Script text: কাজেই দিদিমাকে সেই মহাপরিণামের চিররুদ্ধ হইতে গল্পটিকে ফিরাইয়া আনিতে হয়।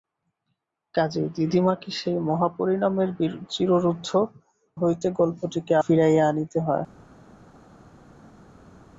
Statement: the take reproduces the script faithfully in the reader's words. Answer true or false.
true